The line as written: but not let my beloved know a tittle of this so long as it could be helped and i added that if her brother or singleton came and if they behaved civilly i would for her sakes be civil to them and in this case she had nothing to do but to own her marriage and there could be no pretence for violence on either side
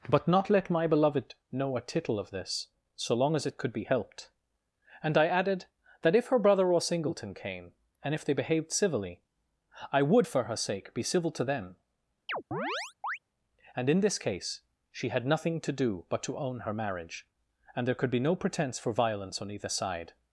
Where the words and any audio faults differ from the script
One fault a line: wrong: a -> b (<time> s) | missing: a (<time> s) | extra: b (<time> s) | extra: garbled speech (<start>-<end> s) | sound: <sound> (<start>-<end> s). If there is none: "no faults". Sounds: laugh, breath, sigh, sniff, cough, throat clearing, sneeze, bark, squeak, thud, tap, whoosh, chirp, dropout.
wrong: sakes -> sake (10.5 s)
sound: chirp (12.3-13.2 s)